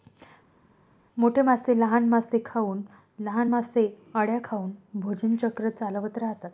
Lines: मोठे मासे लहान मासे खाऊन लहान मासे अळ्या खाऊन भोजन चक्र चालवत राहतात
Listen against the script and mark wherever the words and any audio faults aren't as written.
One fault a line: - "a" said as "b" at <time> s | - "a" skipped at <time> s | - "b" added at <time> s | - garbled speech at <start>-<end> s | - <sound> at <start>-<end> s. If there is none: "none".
none